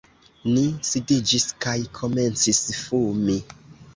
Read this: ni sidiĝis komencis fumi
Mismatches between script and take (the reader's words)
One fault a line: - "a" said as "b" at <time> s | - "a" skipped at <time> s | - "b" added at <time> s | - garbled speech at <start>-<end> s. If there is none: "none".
- "kaj" added at 1.6 s